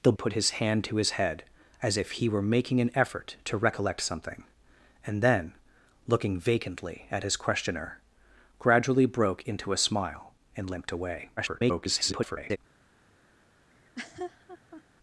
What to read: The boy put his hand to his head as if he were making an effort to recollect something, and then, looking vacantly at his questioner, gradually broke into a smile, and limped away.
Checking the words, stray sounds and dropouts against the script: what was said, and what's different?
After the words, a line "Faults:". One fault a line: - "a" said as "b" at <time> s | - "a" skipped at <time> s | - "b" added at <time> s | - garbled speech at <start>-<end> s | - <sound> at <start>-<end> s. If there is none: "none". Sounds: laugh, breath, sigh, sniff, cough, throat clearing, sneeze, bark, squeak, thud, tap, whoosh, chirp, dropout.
The put his hand to his head as if he were making an effort to recollect something, and then, looking vacantly at his questioner, gradually broke into a smile, and limped away. [garbled]
Faults:
- "boy" skipped at 0.1 s
- garbled speech at 11.4-12.6 s
- laugh at 13.7-14.8 s